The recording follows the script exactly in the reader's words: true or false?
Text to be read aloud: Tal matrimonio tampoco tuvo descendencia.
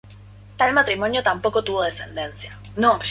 true